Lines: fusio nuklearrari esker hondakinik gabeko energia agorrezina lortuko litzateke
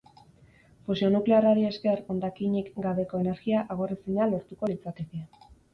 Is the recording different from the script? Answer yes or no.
no